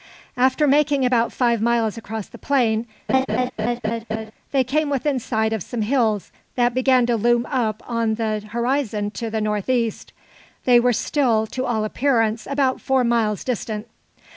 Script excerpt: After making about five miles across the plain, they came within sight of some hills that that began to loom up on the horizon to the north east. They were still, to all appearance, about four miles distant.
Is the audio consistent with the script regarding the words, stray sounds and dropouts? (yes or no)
no